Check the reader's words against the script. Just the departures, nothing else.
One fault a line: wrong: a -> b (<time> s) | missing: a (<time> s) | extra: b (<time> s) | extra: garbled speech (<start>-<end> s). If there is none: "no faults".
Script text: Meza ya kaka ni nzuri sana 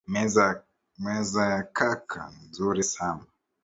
no faults